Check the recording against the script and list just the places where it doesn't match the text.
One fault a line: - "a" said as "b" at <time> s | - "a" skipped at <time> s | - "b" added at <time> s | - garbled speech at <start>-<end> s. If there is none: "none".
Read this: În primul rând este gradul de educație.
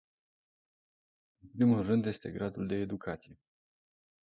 none